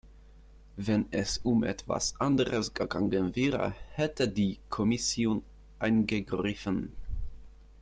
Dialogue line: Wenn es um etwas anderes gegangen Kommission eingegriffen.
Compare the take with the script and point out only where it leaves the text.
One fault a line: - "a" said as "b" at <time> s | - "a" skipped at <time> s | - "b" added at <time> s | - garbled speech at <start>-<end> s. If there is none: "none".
- "wäre hätte die" added at 3.4 s